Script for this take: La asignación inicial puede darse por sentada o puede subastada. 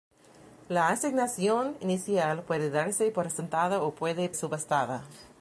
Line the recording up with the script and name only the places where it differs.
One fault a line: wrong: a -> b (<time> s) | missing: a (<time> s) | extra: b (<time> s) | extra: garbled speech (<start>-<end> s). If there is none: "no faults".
no faults